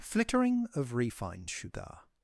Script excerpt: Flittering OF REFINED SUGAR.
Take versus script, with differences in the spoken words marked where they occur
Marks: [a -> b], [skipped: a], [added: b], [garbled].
Flittering OF REFINED SUGAR.